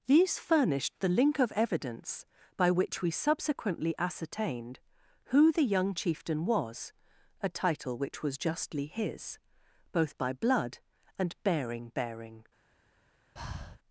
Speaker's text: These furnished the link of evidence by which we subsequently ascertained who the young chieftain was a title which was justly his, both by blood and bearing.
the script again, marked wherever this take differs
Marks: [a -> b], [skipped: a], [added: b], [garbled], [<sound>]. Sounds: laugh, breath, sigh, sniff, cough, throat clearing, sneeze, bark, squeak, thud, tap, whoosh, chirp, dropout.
These furnished the link of evidence by which we subsequently ascertained who the young chieftain was a title which was justly his, both by blood and bearing. [added: bearing] [breath]